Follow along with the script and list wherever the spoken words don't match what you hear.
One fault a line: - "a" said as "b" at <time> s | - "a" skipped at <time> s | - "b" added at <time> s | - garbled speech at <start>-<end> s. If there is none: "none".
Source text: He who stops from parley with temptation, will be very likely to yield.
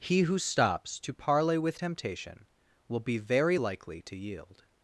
- "from" said as "to" at 1.0 s